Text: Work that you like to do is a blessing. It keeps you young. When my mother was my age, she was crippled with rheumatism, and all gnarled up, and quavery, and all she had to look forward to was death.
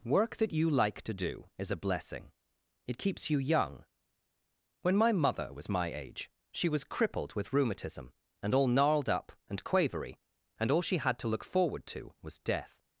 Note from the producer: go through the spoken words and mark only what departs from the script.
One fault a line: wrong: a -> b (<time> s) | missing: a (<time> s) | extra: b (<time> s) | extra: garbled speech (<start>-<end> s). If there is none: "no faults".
no faults